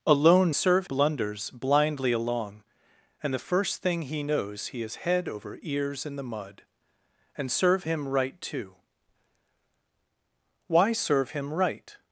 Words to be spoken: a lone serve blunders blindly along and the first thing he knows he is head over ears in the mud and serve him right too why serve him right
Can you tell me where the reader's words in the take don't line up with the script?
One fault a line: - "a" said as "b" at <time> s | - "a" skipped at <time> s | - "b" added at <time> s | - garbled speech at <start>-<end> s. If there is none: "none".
none